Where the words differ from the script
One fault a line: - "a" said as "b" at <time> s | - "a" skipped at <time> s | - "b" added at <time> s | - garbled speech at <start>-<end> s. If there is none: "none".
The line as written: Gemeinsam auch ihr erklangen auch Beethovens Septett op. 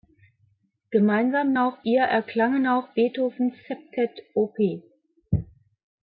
none